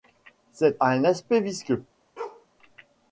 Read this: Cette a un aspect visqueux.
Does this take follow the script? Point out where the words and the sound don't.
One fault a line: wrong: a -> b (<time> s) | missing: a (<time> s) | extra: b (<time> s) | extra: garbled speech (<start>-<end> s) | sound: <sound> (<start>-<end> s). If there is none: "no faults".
sound: bark (2.2-2.5 s)